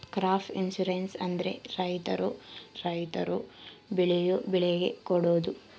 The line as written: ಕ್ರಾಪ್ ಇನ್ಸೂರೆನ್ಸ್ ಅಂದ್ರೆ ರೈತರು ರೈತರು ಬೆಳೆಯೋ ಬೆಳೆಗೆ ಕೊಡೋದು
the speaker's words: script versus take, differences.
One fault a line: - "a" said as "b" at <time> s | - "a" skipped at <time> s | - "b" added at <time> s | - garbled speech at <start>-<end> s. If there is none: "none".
none